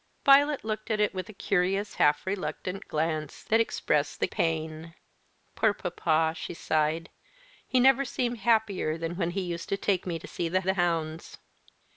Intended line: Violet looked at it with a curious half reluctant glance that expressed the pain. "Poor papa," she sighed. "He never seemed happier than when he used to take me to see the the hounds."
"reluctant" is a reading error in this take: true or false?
false